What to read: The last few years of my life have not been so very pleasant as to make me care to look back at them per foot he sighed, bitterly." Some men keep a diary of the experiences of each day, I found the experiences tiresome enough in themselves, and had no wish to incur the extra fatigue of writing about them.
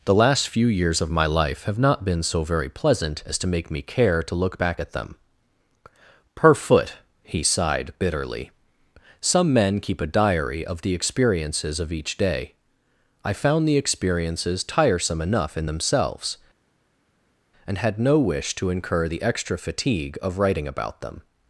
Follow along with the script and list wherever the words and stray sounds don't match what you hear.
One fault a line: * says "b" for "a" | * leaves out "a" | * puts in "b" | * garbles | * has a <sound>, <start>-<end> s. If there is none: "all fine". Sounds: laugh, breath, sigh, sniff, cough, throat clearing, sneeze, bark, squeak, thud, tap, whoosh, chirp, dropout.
all fine